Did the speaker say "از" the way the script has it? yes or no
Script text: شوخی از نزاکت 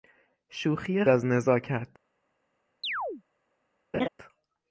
yes